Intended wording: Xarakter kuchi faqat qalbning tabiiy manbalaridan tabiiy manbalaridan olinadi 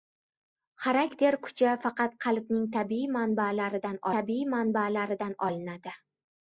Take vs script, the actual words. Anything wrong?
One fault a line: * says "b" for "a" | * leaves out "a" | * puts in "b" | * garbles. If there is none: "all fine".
all fine